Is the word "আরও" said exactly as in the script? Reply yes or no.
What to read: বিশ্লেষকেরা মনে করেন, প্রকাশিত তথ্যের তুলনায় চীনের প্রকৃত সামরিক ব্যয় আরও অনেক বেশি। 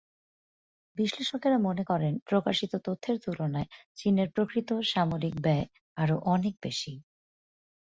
yes